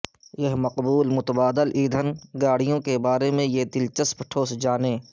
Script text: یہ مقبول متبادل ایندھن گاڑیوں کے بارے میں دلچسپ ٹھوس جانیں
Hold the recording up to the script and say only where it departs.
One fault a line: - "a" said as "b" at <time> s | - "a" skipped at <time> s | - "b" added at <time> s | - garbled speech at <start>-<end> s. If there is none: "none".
- "یہ" added at 3.5 s